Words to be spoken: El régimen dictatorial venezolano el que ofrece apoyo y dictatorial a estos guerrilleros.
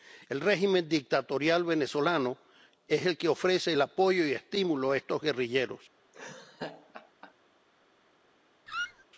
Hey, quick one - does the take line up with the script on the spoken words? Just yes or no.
no